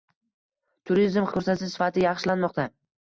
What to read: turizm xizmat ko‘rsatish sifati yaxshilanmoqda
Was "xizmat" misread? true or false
true